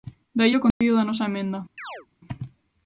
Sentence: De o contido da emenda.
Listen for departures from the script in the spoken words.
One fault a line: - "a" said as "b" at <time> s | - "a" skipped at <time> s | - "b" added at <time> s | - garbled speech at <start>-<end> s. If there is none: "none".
- "aí" added at 0.5 s
- "nosa" added at 1.1 s